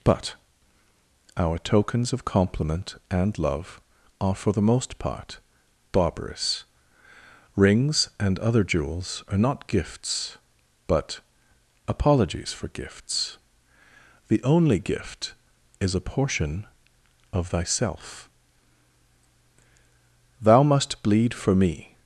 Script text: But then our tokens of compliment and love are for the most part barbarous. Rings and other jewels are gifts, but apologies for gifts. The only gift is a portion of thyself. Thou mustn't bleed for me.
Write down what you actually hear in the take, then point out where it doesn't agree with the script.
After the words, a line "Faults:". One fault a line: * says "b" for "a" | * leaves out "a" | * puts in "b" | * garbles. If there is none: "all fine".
But our tokens of compliment and love are for the most part barbarous. Rings and other jewels are not gifts, but apologies for gifts. The only gift is a portion of thyself. Thou must bleed for me.
Faults:
* leaves out "then"
* puts in "not"
* says "must" for "mustn't"